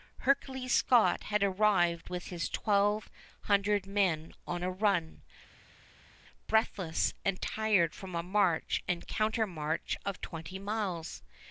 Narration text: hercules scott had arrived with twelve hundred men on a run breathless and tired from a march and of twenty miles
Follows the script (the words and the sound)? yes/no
no